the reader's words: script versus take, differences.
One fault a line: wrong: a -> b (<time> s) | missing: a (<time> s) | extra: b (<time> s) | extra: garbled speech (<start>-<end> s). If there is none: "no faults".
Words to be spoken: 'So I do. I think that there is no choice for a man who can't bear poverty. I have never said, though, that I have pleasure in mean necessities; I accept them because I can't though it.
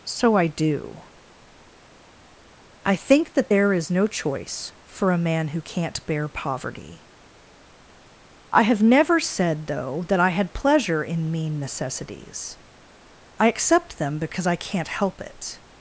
wrong: have -> had (10.3 s)
wrong: though -> help (14.9 s)